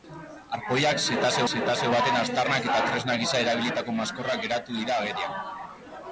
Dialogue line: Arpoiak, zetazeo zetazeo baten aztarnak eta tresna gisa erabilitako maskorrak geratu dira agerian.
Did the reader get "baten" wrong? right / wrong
right